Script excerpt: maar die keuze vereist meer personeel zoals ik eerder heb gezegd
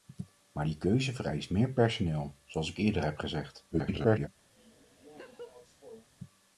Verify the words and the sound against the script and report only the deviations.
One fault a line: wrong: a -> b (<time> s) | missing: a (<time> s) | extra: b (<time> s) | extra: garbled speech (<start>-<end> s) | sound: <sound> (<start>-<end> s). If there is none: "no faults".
extra: garbled speech (3.7-4.3 s)
sound: laugh (4.5-6.1 s)